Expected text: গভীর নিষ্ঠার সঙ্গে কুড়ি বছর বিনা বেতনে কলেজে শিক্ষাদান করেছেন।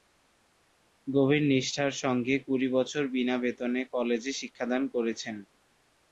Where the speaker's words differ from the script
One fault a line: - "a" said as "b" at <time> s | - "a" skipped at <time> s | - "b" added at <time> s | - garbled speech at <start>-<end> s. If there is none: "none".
none